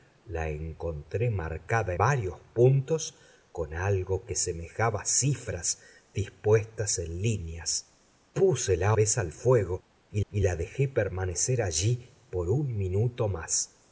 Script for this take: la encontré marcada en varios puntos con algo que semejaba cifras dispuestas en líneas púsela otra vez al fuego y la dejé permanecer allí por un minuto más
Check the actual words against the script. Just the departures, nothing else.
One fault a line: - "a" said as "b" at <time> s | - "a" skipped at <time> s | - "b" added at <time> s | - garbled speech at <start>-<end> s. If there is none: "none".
- "en" skipped at 1.9 s
- "otra" skipped at 9.0 s
- "y" added at 10.3 s